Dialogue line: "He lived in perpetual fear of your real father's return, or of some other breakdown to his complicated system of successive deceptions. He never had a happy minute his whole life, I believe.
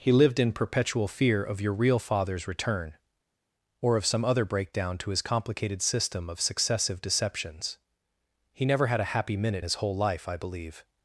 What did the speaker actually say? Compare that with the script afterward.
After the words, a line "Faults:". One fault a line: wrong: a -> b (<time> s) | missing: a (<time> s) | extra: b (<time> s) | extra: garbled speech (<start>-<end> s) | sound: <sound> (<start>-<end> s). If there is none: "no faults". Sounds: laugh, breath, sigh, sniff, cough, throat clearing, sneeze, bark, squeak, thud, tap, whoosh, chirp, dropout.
"He lived in perpetual fear of your real father's return, or of some other breakdown to his complicated system of successive deceptions. He never had a happy minute his whole life, I believe.
Faults:
no faults